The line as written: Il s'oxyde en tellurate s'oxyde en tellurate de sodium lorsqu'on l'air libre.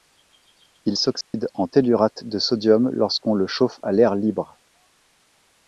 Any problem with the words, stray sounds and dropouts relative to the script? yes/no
yes